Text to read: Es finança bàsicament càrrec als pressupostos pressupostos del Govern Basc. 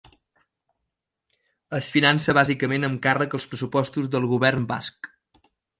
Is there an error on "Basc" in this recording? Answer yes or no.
no